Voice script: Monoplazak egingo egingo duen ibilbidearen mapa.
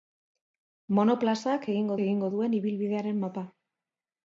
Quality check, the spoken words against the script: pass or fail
pass